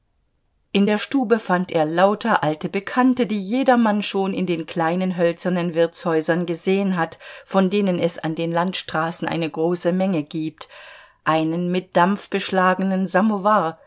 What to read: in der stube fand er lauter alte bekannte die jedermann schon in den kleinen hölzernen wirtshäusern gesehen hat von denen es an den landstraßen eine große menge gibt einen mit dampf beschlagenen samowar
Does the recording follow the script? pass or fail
pass